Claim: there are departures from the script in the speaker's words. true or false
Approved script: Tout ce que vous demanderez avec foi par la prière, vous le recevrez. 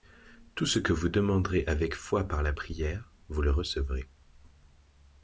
false